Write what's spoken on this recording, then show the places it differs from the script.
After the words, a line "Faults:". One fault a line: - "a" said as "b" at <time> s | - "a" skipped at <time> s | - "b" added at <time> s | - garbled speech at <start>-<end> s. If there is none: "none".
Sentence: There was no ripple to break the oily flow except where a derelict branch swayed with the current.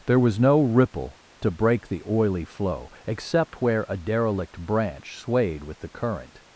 There was no ripple to break the oily flow except where a derelict branch swayed with the current.
Faults:
none